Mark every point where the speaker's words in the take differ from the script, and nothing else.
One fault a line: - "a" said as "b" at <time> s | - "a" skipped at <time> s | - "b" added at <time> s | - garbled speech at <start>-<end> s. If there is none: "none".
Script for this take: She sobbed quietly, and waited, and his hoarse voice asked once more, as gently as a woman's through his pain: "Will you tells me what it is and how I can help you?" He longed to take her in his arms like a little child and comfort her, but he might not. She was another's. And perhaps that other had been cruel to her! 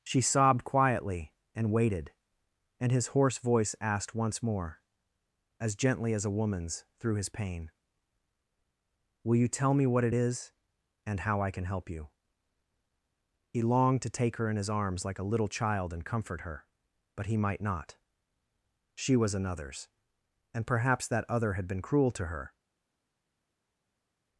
- "tells" said as "tell" at 9.5 s